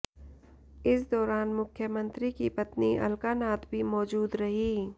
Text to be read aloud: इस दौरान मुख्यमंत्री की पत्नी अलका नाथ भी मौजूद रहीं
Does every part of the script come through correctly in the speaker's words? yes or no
yes